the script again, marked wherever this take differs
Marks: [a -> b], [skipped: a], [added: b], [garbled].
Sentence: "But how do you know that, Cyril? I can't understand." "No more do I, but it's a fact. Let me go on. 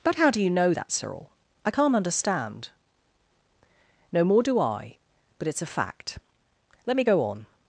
"But how do you know that, Cyril? I can't understand." "No more do I, but it's a fact. Let me go on.